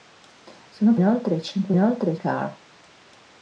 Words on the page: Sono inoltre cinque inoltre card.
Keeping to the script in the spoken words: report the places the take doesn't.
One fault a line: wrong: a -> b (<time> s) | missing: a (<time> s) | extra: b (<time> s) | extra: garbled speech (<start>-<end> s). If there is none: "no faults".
no faults